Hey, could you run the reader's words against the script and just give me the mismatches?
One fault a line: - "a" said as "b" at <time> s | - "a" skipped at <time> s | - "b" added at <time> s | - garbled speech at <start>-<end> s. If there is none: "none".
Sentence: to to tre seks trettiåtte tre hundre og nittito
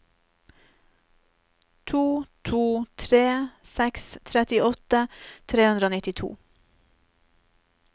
none